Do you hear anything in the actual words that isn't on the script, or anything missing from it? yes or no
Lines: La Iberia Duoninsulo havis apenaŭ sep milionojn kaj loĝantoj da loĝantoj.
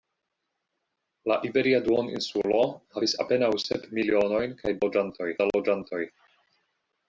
no